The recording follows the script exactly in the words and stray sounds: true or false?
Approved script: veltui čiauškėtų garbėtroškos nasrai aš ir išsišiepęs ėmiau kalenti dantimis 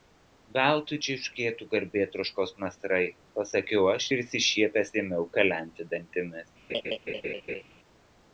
false